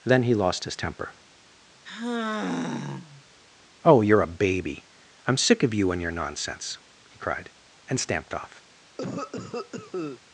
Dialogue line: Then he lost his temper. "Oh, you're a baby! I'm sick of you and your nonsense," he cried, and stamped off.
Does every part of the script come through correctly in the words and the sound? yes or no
no